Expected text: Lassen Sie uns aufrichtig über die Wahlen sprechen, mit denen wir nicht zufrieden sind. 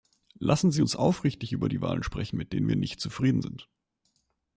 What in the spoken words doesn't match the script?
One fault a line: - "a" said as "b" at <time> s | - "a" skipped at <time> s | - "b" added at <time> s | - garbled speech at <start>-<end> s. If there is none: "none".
none